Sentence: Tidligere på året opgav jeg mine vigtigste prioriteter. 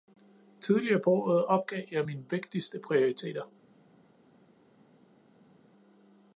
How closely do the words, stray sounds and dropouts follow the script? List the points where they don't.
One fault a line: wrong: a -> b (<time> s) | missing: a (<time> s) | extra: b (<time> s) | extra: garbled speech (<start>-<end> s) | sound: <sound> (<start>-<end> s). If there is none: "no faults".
no faults